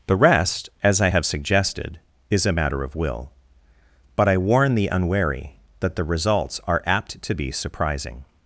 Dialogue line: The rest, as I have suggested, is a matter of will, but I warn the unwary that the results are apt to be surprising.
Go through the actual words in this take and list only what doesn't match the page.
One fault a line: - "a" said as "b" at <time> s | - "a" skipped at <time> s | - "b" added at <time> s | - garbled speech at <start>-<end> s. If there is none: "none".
none